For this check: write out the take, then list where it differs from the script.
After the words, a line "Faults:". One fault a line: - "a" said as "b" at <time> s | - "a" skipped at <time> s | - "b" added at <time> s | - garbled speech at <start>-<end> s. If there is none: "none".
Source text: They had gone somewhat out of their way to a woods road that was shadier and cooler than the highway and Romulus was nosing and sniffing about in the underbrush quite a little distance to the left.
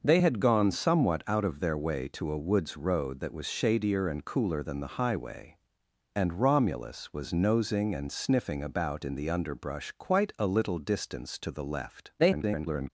They had gone somewhat out of their way to a woods road that was shadier and cooler than the highway and Romulus was nosing and sniffing about in the underbrush quite a little distance to the left. [garbled]
Faults:
- garbled speech at 12.2-12.9 s